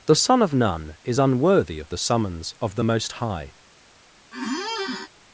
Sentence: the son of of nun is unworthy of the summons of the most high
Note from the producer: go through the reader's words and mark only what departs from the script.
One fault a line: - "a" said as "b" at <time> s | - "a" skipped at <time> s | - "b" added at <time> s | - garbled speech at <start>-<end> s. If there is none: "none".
- "of" skipped at 0.5 s